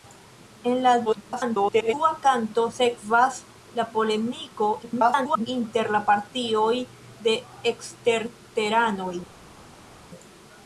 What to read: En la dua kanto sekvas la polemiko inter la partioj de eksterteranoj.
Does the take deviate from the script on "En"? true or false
false